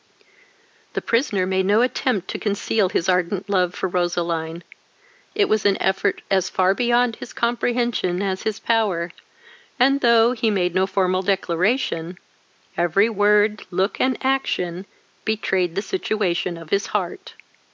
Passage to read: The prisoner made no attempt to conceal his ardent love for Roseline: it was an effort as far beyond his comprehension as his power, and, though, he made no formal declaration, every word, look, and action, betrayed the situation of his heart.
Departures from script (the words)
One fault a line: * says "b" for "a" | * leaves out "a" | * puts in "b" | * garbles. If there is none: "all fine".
all fine